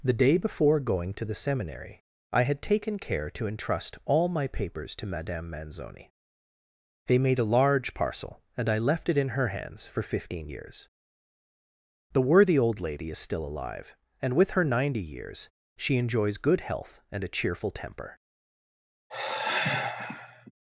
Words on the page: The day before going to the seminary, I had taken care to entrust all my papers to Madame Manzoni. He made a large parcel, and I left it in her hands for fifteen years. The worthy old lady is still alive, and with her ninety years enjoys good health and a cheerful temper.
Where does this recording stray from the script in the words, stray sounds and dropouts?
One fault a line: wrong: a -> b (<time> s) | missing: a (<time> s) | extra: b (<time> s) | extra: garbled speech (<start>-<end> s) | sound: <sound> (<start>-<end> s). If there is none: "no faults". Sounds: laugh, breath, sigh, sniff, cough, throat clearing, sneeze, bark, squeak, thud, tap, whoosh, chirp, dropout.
wrong: He -> They (7.0 s)
extra: she (15.8 s)
sound: sigh (19.1-20.5 s)